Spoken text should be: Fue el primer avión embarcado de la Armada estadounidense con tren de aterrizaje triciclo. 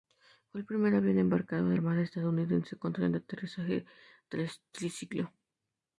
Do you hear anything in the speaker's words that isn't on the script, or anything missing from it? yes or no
yes